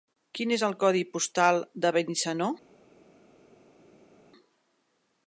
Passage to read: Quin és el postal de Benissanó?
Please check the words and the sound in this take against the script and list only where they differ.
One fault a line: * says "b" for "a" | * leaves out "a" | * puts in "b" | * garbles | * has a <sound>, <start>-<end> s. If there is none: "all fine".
* puts in "codi"